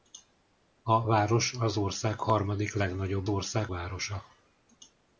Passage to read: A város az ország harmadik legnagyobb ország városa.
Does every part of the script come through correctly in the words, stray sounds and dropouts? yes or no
yes